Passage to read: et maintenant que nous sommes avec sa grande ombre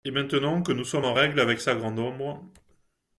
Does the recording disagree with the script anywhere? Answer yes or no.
yes